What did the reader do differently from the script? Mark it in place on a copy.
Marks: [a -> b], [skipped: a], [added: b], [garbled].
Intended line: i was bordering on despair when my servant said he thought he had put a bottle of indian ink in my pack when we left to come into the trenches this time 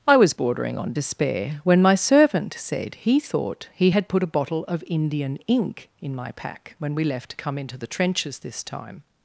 i was bordering on despair when my servant said he thought he had put a bottle of indian ink in my pack when we left to come into the trenches this time